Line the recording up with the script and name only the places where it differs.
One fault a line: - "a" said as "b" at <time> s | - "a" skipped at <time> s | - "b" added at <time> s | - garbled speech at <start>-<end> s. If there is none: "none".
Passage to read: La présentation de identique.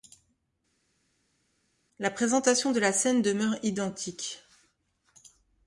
- "la scène demeure" added at 2.8 s